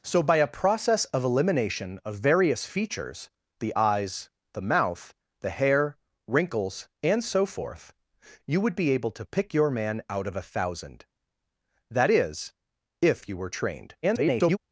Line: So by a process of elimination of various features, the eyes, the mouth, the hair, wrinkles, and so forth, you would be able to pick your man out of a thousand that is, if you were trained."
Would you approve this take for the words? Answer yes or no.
no